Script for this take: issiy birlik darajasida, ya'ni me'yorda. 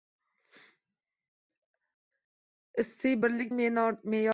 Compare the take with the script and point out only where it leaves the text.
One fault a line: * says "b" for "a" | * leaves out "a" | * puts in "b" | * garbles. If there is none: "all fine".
* leaves out "darajasida ya'ni"